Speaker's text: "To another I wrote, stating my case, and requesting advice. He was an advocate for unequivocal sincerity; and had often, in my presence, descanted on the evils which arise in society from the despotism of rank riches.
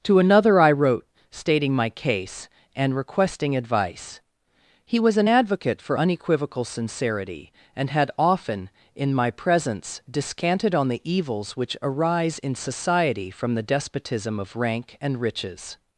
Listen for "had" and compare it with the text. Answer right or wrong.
right